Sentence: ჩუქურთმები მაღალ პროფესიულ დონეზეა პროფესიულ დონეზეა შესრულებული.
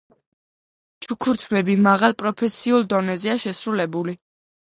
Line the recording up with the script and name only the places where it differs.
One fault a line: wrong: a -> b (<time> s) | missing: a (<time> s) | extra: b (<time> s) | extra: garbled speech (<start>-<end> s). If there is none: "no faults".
missing: პროფესიულ დონეზეა (3.4 s)